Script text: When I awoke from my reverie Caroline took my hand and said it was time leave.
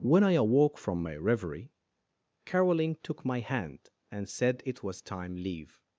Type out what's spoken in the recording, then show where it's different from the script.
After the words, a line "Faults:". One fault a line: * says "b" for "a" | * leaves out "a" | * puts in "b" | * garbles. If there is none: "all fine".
When I awoke from my reverie Caroline took my hand and said it was time leave.
Faults:
all fine